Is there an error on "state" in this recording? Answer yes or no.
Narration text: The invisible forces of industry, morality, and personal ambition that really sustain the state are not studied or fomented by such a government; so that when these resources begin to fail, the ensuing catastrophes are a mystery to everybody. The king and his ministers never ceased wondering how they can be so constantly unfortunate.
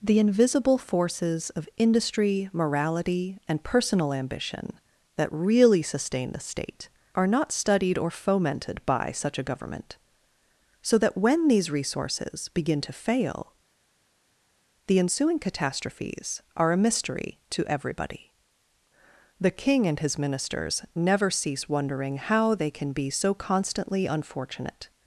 no